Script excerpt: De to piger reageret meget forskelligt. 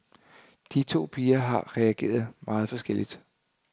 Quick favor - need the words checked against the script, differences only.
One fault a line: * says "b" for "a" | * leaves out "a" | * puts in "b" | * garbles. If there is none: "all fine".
* puts in "har"